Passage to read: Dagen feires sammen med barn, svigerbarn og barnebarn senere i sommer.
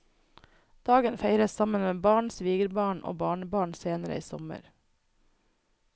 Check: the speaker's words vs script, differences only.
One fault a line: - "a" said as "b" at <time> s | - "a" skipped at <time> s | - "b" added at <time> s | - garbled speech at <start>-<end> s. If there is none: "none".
none